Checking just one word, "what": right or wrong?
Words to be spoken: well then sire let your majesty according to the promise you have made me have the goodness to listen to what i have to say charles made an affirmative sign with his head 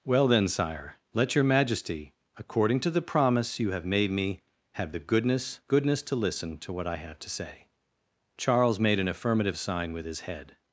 right